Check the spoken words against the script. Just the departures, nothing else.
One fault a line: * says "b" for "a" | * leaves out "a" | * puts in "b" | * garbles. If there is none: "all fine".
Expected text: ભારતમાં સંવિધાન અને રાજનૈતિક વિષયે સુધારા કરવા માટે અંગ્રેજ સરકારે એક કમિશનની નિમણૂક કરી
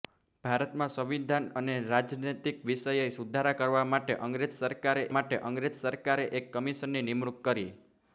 * puts in "માટે અંગ્રેજ સરકારે"